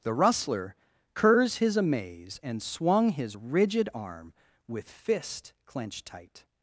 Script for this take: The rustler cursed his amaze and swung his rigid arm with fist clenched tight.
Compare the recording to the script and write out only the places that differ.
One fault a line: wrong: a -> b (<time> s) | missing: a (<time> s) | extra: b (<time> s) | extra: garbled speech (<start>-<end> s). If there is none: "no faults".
wrong: cursed -> curs (1.1 s)